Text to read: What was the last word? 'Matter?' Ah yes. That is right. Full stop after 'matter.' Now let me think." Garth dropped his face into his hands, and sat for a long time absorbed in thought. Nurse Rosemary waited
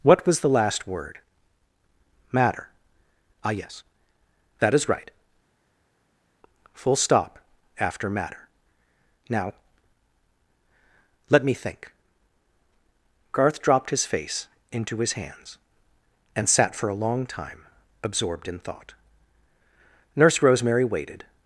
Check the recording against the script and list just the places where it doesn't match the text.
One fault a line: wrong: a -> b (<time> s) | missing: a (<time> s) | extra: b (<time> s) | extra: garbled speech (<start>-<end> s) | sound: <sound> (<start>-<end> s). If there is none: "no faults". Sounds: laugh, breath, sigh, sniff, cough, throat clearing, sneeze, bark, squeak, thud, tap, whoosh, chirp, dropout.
no faults